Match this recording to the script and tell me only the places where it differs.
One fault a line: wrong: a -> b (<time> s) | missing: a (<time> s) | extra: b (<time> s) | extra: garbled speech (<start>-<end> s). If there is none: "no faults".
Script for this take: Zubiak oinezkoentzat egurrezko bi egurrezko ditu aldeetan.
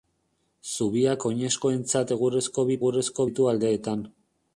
no faults